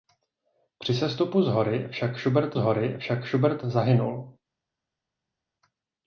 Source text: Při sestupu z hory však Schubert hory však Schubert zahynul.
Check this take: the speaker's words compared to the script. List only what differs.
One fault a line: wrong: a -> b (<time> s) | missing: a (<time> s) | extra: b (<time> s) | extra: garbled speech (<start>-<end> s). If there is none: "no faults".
no faults